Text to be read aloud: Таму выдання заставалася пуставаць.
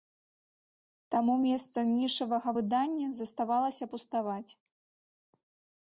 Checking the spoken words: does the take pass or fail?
fail